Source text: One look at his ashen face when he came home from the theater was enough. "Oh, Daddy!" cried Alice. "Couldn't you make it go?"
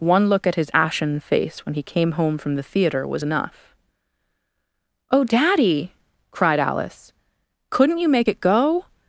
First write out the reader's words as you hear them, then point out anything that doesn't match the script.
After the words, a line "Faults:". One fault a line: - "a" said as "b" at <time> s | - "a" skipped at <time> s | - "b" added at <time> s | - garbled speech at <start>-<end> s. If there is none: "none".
One look at his ashen face when he came home from the theater was enough. "Oh, Daddy!" cried Alice. "Couldn't you make it go?"
Faults:
none